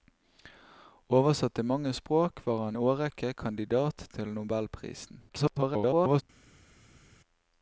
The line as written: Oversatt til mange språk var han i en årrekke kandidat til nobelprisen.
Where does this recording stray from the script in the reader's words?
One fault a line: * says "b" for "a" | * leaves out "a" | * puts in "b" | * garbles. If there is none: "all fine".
* leaves out "i en"
* garbles